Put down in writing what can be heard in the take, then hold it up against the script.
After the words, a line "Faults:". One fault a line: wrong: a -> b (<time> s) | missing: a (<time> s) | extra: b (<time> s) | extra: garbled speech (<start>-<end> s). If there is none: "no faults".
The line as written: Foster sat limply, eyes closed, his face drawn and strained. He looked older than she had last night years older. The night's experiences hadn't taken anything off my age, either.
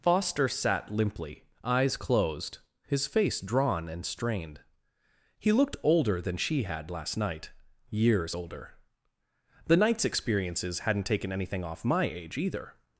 Foster sat limply, eyes closed, his face drawn and strained. He looked older than she had last night years older. The night's experiences hadn't taken anything off my age, either.
Faults:
no faults